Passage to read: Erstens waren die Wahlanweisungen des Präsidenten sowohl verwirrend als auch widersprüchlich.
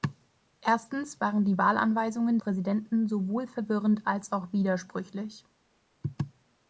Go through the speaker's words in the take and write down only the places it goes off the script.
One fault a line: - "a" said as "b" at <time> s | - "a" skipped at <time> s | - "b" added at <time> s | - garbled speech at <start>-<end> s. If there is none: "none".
- "des" skipped at 2.4 s